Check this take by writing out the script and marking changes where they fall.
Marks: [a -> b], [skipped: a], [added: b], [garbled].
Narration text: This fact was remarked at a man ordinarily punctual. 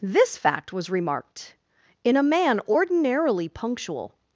This fact was remarked [at -> in] a man ordinarily punctual.